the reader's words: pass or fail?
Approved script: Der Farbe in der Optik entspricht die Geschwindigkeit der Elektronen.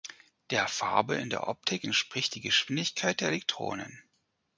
pass